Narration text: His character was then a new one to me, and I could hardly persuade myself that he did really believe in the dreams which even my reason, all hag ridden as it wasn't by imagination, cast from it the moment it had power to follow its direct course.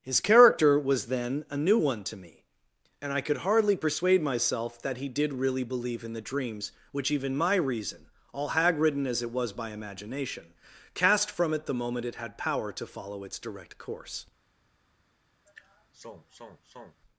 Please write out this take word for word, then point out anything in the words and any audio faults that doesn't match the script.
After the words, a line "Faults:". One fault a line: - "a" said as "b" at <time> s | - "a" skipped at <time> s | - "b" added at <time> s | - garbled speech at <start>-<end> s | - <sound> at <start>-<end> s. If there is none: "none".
His character was then a new one to me, and I could hardly persuade myself that he did really believe in the dreams which even my reason, all hag ridden as it was by imagination, cast from it the moment it had power to follow its direct course.
Faults:
- "wasn't" said as "was" at 9.3 s
- sigh at 15.5-17.0 s